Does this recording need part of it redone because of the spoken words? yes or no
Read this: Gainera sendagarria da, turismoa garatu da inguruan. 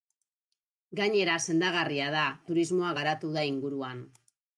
no